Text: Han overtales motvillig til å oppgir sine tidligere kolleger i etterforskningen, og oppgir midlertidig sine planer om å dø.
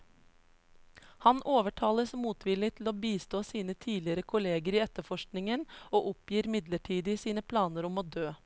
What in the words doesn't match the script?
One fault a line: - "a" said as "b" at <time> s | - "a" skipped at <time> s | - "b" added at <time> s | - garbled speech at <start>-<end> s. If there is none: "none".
- "oppgir" said as "bistå" at 3.0 s